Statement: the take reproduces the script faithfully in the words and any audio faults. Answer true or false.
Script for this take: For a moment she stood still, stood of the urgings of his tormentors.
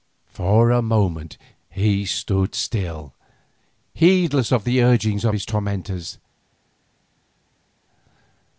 false